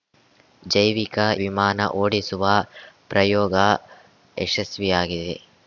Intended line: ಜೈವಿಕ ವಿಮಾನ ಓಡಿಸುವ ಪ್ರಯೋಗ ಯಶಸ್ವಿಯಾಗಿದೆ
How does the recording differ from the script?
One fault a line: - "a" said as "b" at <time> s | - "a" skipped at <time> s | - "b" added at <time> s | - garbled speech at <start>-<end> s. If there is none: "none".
none